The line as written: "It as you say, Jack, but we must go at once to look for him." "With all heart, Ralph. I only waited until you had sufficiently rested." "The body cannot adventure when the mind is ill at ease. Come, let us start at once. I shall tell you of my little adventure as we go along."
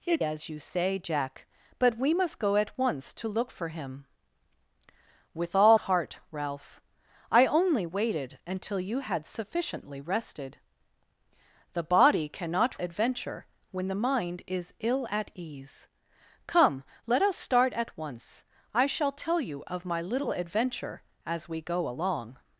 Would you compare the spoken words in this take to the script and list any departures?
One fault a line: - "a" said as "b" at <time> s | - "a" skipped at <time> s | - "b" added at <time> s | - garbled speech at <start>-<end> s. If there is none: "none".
none